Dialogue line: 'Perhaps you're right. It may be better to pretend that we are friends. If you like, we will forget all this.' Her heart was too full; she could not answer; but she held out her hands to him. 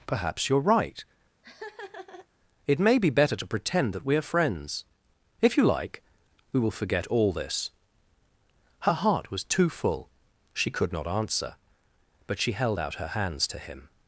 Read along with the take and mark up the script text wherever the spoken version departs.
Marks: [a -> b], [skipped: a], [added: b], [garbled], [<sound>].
'Perhaps you're right. [laugh] It may be better to pretend that we are friends. If you like, we will forget all this.' Her heart was too full; she could not answer; but she held out her hands to him.